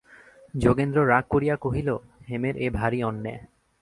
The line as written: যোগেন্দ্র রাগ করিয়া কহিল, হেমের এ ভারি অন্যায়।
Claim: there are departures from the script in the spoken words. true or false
false